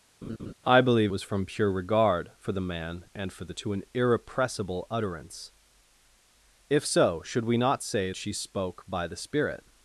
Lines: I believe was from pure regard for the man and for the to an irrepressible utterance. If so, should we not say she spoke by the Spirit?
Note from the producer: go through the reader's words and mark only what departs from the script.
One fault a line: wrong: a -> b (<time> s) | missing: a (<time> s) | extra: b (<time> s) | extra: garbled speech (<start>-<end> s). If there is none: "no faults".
no faults